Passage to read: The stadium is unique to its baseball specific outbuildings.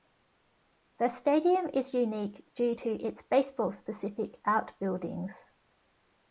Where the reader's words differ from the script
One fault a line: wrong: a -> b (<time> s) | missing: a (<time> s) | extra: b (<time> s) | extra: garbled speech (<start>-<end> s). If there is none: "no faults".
extra: due (2.5 s)